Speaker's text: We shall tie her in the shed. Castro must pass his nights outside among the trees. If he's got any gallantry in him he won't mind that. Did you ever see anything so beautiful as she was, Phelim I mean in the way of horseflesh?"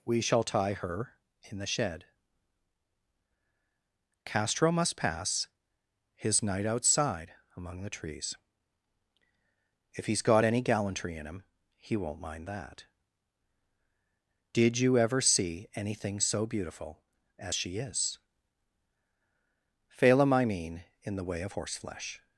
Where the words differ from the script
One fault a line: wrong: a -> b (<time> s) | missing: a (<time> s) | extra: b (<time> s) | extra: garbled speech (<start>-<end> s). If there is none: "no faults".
wrong: nights -> night (6.4 s)
wrong: was -> is (17.8 s)